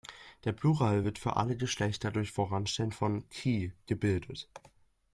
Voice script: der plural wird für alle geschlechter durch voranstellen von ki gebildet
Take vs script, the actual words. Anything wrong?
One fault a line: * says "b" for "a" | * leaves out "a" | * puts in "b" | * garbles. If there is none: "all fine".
all fine